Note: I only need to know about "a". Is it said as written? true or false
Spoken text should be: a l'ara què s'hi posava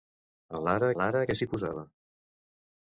true